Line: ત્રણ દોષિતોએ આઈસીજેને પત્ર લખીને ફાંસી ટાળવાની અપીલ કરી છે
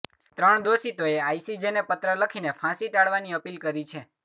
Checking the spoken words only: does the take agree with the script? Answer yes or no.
yes